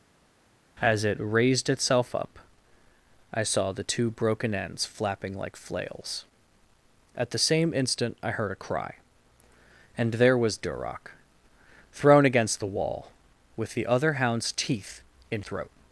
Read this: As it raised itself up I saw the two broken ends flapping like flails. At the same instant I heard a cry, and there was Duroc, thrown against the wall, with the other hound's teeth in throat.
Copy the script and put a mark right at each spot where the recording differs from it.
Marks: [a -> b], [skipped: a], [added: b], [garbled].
As it raised itself up I saw the two broken ends flapping like flails. At the same instant I heard a cry, and there was Duroc, thrown against the wall, with the other hound's teeth in throat.